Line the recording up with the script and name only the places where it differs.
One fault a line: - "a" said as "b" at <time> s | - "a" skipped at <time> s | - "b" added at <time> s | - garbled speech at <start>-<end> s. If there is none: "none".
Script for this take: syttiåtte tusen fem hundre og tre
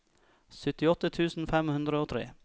none